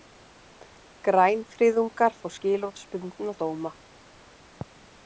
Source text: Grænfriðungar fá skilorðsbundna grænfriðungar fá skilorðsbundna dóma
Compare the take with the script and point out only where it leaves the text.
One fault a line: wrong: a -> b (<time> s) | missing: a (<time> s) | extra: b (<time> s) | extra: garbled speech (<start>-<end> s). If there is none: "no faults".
missing: grænfriðungar fá skilorðsbundna (3.4 s)